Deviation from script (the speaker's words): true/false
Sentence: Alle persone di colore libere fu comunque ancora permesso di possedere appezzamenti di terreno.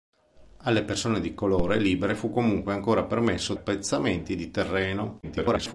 true